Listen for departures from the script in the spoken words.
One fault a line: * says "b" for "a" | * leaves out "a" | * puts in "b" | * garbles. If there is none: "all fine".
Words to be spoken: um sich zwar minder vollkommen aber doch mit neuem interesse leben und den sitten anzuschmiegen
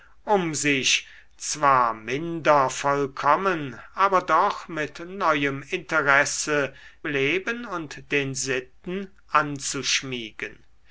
all fine